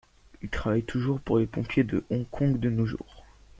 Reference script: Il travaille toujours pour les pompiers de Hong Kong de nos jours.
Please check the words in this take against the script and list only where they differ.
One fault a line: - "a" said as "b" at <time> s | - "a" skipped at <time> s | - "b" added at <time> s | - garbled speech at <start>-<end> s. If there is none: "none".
none